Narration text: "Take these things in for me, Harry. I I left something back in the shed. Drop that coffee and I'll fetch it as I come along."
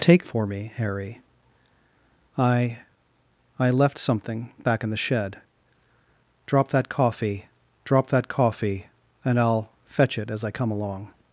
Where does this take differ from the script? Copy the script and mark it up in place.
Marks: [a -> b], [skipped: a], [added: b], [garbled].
"Take [skipped: these things in] for me, Harry. I I left something back in the shed. Drop that coffee [added: drop that coffee] and I'll fetch it as I come along."